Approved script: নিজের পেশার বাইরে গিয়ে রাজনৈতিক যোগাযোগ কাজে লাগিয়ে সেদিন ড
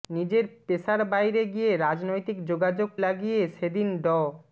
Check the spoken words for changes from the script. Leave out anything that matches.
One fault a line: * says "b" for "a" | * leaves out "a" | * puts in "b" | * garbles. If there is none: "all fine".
* leaves out "কাজে"